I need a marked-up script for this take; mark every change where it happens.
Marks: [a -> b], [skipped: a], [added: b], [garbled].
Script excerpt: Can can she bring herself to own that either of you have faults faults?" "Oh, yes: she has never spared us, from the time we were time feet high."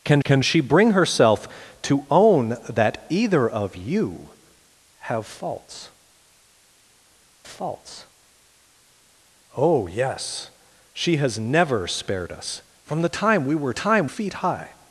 Can can she bring herself to own that either of you have faults faults?" "Oh, yes: she has never spared us, from the time we were time feet high."